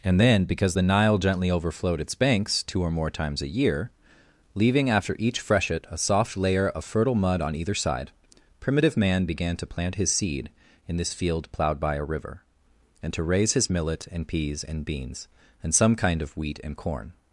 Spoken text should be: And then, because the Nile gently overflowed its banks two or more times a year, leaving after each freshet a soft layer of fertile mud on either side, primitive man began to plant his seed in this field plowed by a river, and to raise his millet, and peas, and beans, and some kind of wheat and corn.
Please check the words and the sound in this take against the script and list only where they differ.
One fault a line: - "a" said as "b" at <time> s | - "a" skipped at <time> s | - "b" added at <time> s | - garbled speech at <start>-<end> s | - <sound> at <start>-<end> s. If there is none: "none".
none